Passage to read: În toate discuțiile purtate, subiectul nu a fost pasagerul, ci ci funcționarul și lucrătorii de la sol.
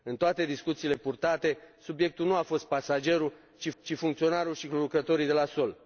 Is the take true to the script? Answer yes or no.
yes